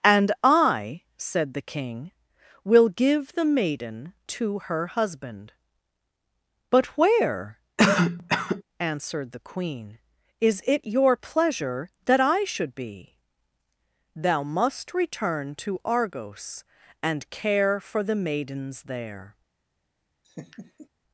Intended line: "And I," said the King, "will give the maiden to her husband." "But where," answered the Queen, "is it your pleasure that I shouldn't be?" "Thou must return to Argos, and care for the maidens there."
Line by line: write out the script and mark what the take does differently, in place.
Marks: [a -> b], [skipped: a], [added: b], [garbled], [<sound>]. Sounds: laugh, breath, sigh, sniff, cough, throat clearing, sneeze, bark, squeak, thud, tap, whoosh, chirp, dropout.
"And I," said the King, "will give the maiden to her husband." "But where," [cough] answered the Queen, "is it your pleasure that I [shouldn't -> should] be?" "Thou must return to Argos, and care for the maidens there." [laugh]